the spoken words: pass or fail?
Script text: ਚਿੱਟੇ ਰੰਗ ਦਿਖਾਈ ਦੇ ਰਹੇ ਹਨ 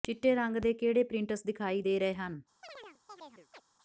fail